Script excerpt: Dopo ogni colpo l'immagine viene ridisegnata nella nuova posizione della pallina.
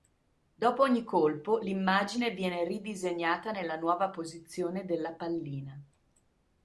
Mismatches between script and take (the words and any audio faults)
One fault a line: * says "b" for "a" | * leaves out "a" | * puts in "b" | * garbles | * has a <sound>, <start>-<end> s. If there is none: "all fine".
all fine